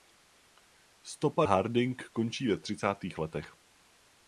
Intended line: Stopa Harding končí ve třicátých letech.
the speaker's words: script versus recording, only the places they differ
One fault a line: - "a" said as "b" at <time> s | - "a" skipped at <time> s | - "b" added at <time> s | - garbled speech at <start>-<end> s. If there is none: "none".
none